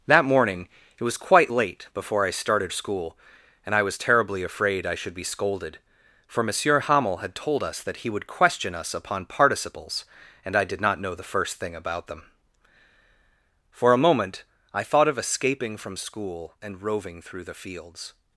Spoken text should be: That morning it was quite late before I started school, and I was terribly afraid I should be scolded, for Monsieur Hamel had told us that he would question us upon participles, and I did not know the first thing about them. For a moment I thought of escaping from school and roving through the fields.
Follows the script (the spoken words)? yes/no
yes